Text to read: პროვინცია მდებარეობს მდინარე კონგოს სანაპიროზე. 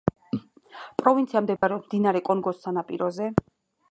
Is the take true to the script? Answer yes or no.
yes